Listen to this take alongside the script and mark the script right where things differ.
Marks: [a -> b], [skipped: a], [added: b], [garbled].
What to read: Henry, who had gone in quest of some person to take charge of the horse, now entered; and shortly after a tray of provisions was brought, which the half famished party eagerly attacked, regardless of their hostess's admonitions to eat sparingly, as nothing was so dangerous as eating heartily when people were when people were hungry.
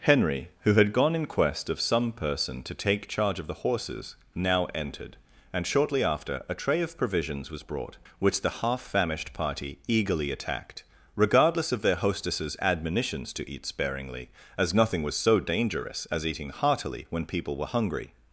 Henry, who had gone in quest of some person to take charge of the [horse, -> horses] now entered; and shortly after a tray of provisions was brought, which the half famished party eagerly attacked, regardless of their hostess's admonitions to eat sparingly, as nothing was so dangerous as eating heartily when people were [skipped: when people were] hungry.